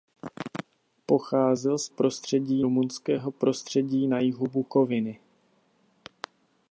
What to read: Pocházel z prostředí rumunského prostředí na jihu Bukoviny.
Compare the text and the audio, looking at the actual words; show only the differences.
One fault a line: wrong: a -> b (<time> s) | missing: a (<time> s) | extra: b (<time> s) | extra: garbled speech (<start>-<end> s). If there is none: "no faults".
no faults